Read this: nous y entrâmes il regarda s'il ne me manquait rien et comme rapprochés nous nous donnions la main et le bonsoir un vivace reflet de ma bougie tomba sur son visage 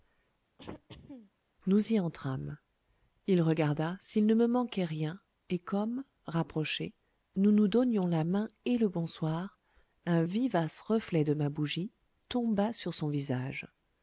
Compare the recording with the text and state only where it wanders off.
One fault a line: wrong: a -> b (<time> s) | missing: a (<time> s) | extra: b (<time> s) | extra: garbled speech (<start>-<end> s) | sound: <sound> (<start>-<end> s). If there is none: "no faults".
sound: throat clearing (0.6-1.3 s)